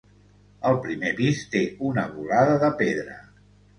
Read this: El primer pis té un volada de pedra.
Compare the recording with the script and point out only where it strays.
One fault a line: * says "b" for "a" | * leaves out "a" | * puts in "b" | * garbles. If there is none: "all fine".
* says "una" for "un"